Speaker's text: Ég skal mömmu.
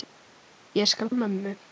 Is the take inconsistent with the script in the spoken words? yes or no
no